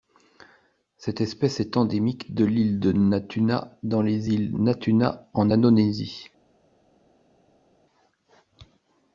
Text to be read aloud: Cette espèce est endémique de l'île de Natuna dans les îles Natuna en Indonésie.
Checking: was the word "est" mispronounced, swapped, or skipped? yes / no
no